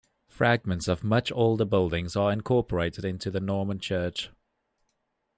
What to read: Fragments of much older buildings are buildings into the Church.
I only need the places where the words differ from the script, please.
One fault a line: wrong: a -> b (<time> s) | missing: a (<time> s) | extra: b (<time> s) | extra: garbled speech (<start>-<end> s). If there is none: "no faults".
wrong: buildings -> incorporated (2.3 s)
extra: Norman (3.4 s)